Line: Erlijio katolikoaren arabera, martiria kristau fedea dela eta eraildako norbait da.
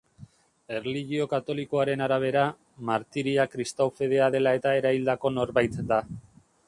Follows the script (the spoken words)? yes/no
yes